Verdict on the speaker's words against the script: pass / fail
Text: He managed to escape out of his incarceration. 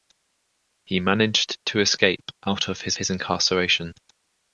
fail